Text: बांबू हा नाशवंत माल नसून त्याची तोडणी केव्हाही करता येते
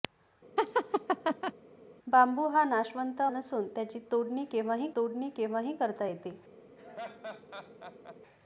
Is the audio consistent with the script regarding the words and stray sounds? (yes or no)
no